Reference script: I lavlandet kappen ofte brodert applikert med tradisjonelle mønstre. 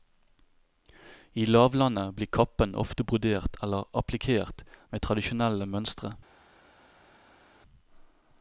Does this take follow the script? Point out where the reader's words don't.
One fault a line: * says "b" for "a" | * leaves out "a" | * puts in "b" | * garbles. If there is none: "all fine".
* puts in "blir"
* puts in "eller"